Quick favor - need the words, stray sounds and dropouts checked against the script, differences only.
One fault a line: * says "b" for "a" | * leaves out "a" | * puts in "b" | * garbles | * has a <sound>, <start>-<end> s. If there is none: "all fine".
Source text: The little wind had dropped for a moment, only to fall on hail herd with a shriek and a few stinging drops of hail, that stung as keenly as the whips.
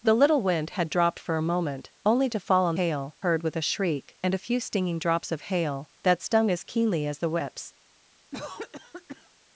* has a cough, 8.3-9.3 s